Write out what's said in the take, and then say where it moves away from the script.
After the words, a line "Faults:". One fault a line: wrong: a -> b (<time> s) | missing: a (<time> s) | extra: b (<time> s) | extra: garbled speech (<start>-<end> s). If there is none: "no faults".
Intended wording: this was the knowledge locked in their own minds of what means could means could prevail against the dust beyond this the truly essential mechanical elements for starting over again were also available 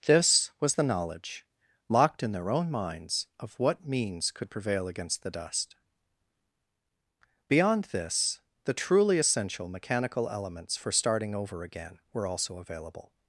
this was the knowledge locked in their own minds of what means could prevail against the dust beyond this the truly essential mechanical elements for starting over again were also available
Faults:
missing: means could (4.5 s)